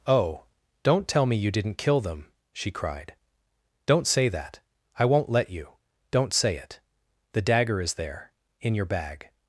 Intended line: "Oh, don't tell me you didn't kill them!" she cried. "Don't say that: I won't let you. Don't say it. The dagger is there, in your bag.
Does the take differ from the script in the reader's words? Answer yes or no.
no